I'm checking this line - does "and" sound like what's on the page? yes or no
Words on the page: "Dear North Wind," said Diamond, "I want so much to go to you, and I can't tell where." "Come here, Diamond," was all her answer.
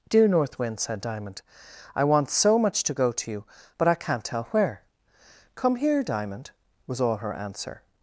no